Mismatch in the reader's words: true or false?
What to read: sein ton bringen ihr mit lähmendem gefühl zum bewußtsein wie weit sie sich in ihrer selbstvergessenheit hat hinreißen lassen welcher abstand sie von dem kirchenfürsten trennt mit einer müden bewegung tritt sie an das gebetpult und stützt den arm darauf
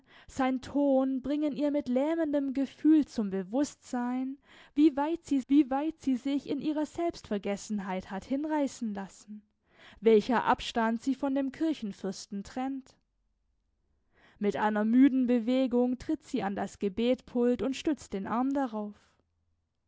true